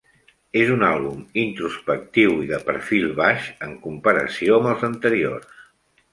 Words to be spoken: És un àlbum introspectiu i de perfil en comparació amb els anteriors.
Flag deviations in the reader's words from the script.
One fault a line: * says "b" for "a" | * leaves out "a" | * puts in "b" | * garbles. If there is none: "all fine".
* puts in "baix"